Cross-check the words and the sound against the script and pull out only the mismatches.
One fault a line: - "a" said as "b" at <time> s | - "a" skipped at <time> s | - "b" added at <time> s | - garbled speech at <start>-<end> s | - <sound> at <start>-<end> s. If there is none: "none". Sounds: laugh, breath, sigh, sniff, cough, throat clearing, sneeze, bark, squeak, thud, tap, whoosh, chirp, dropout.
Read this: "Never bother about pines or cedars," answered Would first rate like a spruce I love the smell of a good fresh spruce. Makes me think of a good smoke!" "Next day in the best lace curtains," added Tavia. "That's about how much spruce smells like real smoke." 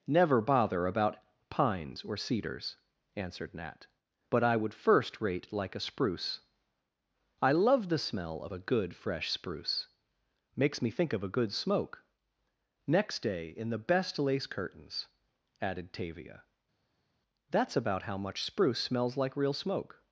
- "Nat but I" added at 3.5 s